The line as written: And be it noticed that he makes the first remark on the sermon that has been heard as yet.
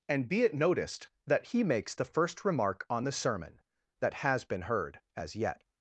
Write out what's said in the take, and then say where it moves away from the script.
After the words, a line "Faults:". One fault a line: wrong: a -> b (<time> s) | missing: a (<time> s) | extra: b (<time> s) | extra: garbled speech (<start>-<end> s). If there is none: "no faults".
And be it noticed that he makes the first remark on the sermon that has been heard as yet.
Faults:
no faults